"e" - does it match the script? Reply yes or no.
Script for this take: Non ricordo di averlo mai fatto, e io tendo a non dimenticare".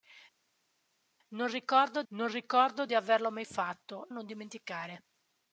no